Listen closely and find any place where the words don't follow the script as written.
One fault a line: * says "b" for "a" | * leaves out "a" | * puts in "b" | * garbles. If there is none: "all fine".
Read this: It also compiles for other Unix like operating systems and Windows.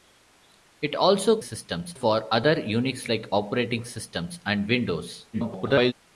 * says "systems" for "compiles"
* garbles